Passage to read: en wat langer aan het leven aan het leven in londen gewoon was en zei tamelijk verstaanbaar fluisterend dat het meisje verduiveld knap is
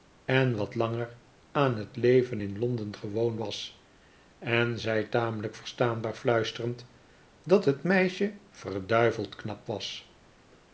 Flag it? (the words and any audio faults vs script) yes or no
yes